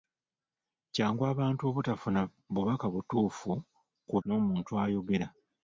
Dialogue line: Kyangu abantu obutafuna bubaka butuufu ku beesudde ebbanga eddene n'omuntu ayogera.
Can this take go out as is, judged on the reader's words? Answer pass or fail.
fail